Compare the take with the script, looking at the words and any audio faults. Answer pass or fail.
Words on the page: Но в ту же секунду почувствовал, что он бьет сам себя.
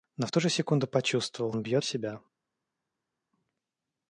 fail